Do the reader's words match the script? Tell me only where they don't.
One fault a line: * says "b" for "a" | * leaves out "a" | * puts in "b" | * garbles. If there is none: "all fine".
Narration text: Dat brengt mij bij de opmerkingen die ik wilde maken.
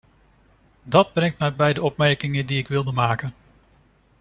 all fine